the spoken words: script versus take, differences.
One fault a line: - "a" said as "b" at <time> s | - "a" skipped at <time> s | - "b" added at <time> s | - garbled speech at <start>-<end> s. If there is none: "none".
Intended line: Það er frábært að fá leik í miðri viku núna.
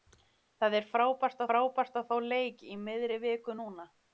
- "frábært" added at 1.5 s